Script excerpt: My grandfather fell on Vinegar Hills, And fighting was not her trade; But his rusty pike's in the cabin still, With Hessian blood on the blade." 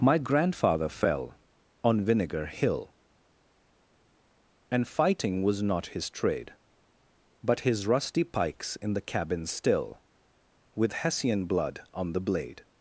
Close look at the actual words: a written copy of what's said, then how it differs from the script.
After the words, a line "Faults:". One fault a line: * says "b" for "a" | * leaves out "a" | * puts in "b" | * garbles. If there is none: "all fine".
My grandfather fell on Vinegar Hill, And fighting was not his trade; But his rusty pike's in the cabin still, With Hessian blood on the blade."
Faults:
* says "Hill" for "Hills"
* says "his" for "her"